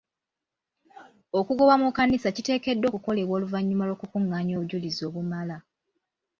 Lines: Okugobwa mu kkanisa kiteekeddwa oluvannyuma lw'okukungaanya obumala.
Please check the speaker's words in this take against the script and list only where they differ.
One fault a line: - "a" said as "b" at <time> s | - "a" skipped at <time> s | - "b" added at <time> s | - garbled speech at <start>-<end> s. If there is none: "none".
- "okukolebwa" added at 2.9 s
- "obujulizi" added at 4.5 s